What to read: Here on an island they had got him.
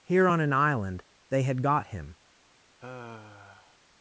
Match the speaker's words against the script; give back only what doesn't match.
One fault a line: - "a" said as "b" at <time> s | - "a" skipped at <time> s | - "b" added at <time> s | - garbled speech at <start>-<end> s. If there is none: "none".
none